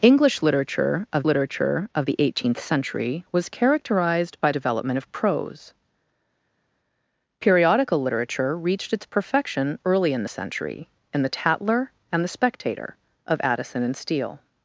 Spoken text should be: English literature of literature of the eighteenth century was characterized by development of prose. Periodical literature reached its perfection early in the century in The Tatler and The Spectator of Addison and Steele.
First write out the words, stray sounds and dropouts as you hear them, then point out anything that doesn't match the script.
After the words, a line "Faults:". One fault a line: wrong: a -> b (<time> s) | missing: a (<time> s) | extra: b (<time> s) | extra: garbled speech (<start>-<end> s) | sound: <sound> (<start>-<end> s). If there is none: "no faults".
English literature of literature of the eighteenth century was characterized by development of prose. Periodical literature reached its perfection early in the century in The Tatler and The Spectator of Addison and Steele.
Faults:
no faults